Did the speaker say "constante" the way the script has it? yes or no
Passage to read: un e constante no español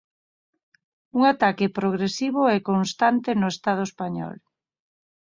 yes